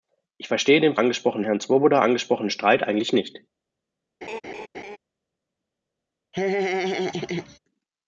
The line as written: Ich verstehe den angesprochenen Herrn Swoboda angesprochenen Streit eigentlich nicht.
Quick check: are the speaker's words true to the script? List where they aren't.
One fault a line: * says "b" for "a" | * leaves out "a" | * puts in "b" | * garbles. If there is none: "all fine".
all fine